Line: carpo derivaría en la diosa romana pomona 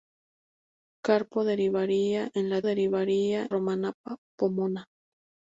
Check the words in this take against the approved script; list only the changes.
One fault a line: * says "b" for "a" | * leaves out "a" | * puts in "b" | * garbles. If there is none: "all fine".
* says "derivaría" for "diosa"